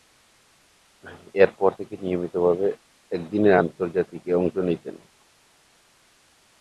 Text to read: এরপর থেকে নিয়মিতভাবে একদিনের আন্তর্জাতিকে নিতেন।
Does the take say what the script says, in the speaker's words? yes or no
no